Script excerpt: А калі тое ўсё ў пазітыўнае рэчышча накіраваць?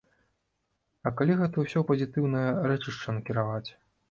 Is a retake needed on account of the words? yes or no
yes